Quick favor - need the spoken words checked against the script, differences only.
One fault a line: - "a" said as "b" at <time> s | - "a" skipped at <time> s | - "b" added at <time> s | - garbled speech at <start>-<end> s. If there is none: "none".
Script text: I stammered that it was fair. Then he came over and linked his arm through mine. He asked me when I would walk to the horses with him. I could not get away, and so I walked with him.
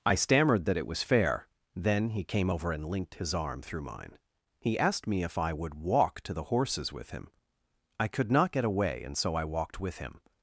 - "when" said as "if" at 5.2 s